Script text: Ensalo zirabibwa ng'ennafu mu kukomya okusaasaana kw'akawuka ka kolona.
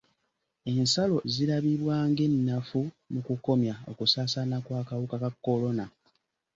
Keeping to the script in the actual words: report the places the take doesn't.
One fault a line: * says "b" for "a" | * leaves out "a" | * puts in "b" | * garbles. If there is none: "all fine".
all fine